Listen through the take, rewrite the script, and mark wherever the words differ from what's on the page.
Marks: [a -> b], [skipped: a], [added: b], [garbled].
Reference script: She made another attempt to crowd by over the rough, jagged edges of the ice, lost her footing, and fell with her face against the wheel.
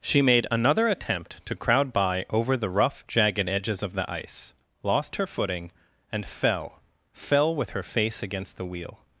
She made another attempt to crowd by over the rough, jagged edges of the ice, lost her footing, and fell [added: fell] with her face against the wheel.